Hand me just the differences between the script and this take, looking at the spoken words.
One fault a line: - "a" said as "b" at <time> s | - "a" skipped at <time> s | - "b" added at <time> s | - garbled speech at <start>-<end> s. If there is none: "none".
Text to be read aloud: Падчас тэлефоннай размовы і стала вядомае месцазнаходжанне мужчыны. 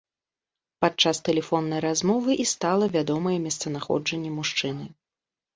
none